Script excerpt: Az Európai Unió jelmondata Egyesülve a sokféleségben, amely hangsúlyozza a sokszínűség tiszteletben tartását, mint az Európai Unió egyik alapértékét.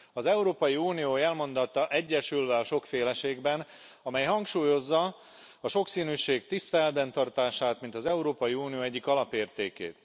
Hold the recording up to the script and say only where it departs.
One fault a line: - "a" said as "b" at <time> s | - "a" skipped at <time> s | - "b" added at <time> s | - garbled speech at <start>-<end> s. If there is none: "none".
none